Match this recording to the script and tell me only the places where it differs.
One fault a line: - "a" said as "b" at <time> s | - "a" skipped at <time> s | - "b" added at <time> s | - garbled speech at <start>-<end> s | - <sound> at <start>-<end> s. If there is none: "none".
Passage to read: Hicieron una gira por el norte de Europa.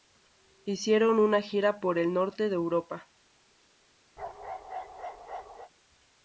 - bark at 4.2-5.7 s